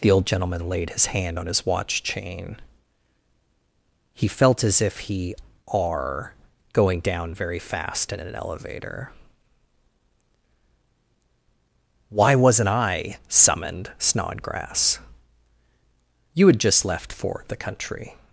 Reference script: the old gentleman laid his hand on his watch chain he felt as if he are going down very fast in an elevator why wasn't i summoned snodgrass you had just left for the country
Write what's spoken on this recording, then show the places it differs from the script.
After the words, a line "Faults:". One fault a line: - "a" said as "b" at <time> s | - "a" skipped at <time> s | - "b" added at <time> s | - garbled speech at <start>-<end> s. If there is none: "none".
the old gentleman laid his hand on his watch chain he felt as if he are going down very fast in an elevator why wasn't i summoned snodgrass you had just left for the country
Faults:
none